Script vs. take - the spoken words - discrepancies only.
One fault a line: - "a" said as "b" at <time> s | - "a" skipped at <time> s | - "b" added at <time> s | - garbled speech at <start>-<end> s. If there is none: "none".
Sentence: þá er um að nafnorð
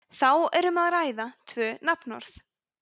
- "ræða tvö" added at 0.9 s